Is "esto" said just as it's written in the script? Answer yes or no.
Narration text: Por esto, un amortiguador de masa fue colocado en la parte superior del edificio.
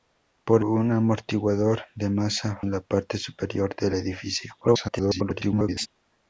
no